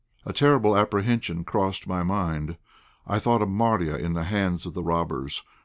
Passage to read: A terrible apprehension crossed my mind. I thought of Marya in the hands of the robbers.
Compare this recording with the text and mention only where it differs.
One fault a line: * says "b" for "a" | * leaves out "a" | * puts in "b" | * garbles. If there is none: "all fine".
all fine